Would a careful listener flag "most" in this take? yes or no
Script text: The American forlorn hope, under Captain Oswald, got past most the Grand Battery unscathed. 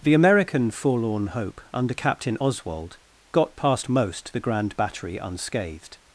no